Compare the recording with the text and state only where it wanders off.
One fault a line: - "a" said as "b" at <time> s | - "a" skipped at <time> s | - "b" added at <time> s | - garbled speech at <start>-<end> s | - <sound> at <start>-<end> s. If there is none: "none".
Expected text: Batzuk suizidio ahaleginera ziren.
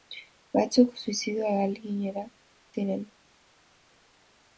none